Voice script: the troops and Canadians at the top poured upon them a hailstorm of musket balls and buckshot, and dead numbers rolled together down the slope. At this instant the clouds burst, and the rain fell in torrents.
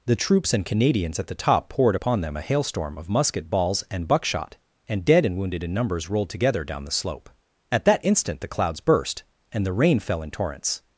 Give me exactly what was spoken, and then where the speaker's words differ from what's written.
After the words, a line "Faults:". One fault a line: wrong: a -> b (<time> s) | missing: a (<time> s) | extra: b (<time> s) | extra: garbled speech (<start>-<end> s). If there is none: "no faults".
the troops and Canadians at the top poured upon them a hailstorm of musket balls and buckshot, and dead and wounded in numbers rolled together down the slope. At that instant the clouds burst, and the rain fell in torrents.
Faults:
extra: and wounded in (5.2 s)
wrong: this -> that (7.8 s)